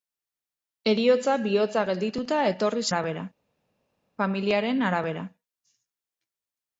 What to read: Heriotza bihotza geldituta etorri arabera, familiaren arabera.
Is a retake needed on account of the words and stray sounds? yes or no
no